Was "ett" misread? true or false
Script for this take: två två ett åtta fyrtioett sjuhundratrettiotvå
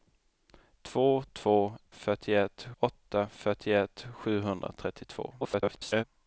true